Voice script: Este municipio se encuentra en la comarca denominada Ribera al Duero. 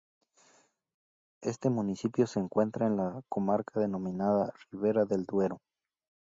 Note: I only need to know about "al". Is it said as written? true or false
false